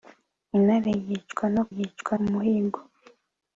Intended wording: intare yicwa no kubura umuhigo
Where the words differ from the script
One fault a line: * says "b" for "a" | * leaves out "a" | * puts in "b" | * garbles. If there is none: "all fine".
* says "yicwa" for "kubura"